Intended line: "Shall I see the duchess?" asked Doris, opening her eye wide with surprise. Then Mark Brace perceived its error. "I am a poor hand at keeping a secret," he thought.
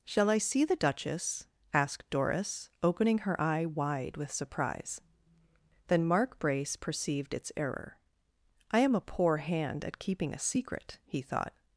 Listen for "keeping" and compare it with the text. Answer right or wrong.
right